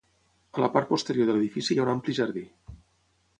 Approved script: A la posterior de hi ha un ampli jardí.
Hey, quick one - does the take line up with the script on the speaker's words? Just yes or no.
no